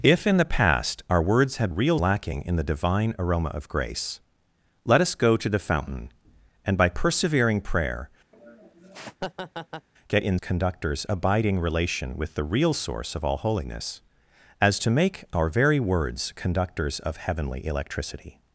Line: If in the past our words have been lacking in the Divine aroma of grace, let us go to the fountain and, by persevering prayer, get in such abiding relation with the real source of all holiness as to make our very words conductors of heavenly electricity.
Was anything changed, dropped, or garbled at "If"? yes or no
no